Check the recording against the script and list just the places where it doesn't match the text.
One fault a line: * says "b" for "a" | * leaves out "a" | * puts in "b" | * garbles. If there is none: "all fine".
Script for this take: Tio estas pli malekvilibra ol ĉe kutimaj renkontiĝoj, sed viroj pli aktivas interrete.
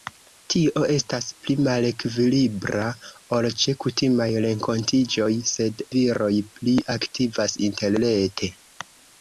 all fine